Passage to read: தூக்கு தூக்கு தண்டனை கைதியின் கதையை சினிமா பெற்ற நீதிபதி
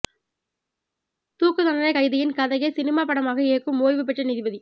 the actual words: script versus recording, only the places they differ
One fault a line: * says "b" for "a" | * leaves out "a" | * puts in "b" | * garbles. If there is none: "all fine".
* leaves out "தூக்கு"
* puts in "படமாக இயக்கும் ஓய்வு"